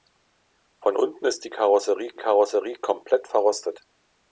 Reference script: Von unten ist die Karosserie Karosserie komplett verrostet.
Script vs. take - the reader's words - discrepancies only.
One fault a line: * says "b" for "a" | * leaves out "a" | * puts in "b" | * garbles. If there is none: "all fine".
all fine